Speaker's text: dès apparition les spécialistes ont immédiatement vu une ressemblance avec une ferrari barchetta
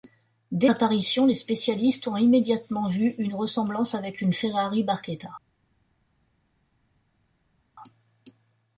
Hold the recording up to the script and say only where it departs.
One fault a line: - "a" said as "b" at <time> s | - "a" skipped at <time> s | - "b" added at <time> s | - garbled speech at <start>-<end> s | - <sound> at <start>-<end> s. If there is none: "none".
none